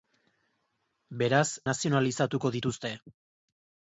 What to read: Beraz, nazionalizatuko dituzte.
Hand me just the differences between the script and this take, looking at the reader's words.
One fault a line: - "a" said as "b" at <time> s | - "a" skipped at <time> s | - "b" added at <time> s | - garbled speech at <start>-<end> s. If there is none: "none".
none